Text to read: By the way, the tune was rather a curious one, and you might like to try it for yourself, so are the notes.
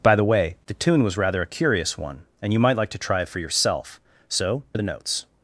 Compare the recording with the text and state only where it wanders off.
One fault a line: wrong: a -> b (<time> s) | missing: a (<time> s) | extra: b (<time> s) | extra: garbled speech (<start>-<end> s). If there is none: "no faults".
no faults